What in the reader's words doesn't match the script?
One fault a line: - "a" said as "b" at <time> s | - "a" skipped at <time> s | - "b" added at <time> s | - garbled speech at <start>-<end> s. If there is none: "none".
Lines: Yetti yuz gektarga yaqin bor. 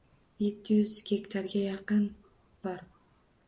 none